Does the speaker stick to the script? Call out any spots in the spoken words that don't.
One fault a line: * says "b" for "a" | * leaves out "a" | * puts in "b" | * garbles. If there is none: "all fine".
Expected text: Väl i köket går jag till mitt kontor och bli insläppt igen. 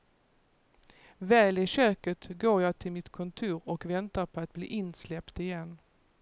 * puts in "väntar på att"